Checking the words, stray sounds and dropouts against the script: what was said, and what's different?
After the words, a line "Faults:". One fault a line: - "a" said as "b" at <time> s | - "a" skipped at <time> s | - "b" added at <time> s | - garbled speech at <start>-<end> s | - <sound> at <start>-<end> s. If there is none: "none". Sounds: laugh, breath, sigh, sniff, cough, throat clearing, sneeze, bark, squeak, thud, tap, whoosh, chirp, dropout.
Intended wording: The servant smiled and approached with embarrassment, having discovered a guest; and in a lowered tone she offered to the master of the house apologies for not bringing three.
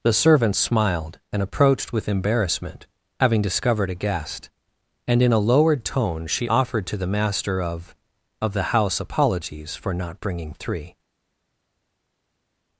The servant smiled and approached with embarrassment, having discovered a guest; and in a lowered tone she offered to the master of of the house apologies for not bringing three.
Faults:
- "of" added at 8.4 s